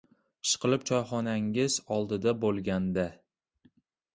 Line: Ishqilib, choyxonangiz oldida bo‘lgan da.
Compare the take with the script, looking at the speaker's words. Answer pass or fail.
pass